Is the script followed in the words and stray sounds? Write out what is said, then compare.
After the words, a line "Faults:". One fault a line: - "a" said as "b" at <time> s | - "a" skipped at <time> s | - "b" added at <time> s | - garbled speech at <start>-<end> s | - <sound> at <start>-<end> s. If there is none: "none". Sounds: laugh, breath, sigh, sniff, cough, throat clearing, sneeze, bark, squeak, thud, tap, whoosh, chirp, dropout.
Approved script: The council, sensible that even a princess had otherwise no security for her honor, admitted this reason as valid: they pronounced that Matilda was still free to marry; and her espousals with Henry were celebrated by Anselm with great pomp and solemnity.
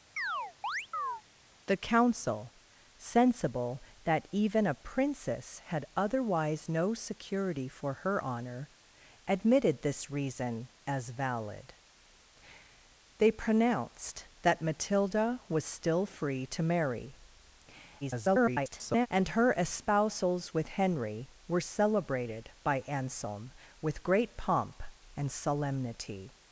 The council, sensible that even a princess had otherwise no security for her honor, admitted this reason as valid: they pronounced that Matilda was still free to marry; [garbled] and her espousals with Henry were celebrated by Anselm with great pomp and solemnity.
Faults:
- chirp at 0.2-1.2 s
- garbled speech at 18.0-19.1 s